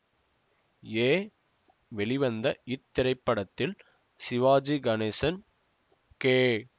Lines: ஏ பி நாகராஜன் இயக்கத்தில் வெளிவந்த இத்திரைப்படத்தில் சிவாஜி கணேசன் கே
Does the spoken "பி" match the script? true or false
false